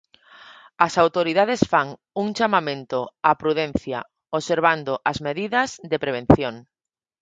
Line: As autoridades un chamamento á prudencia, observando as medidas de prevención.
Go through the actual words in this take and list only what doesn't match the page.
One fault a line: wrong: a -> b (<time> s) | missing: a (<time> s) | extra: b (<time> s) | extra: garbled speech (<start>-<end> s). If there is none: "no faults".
extra: fan (1.7 s)